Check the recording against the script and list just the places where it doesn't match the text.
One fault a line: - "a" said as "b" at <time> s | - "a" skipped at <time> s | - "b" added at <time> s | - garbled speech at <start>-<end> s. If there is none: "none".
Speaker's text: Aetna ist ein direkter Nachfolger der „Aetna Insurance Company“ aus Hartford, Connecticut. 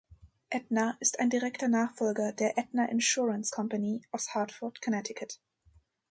none